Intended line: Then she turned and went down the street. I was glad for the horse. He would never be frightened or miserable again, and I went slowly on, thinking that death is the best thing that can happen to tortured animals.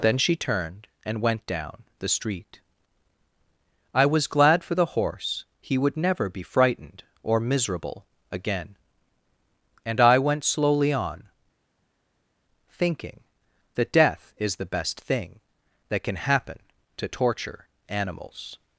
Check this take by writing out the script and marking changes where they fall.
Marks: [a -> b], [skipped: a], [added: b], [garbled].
Then she turned and went down the street. I was glad for the horse. He would never be frightened or miserable again, and I went slowly on, thinking that death is the best thing that can happen to [tortured -> torture] animals.